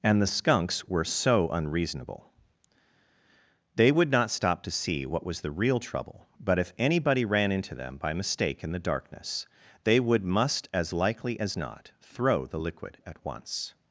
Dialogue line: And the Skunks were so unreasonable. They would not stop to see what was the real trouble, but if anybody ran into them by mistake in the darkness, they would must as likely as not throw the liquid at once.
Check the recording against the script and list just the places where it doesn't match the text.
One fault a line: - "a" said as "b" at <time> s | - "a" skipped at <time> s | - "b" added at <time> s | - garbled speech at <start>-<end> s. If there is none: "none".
none